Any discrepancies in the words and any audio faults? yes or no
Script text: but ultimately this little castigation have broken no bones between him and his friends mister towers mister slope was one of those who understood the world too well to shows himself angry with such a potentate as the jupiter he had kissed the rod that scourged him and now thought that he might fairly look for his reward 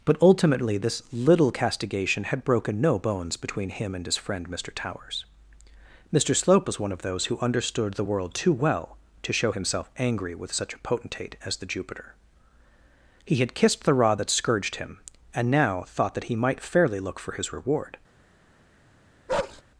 yes